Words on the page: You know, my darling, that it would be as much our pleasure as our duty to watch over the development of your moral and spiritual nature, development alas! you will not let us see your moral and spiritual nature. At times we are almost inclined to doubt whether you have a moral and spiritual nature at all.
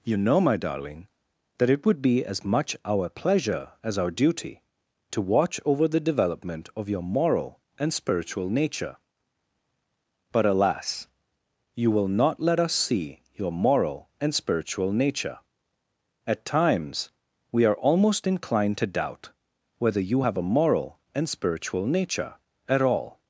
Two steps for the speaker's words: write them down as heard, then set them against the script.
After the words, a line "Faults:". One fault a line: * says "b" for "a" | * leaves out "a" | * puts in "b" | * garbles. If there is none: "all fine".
You know, my darling, that it would be as much our pleasure as our duty to watch over the development of your moral and spiritual nature, but alas! you will not let us see your moral and spiritual nature. At times we are almost inclined to doubt whether you have a moral and spiritual nature at all.
Faults:
* says "but" for "development"